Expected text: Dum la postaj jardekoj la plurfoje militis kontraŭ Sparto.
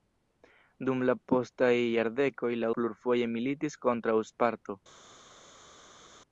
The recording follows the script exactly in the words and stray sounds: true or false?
true